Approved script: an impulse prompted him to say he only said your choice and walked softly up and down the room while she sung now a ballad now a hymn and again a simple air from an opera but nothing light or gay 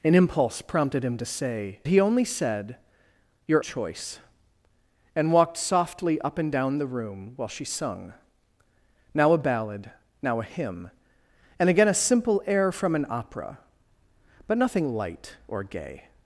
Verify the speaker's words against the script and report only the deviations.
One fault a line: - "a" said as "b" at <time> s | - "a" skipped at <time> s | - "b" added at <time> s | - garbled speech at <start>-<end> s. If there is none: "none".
none